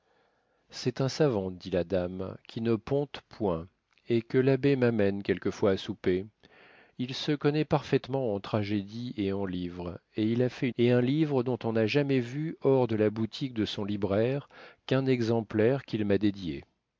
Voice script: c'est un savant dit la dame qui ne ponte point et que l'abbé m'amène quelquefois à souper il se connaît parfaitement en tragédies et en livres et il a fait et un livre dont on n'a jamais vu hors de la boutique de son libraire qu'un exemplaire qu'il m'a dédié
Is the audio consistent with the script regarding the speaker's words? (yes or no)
yes